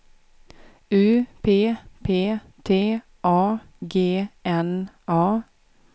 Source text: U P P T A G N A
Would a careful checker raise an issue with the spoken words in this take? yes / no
no